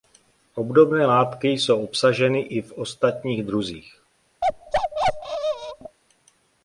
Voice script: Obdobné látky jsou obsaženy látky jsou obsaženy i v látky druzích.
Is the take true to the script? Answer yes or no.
no